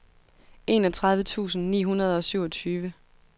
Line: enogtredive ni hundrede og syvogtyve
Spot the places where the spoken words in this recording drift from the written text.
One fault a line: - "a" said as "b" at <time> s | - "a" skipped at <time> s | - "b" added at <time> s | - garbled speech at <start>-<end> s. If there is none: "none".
- "tusind" added at 1.2 s